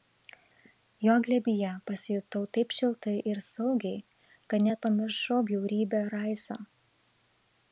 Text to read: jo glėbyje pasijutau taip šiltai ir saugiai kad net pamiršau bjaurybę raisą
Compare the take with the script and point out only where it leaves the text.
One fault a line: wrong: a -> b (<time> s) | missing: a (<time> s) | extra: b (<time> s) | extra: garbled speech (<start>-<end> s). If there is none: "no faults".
no faults